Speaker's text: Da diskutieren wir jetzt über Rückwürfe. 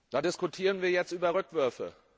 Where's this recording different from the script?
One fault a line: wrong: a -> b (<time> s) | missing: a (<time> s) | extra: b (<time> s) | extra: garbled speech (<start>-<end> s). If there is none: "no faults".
no faults